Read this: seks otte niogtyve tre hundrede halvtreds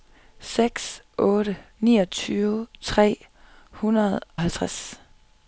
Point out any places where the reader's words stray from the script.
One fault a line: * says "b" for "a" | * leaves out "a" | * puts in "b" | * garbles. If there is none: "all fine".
all fine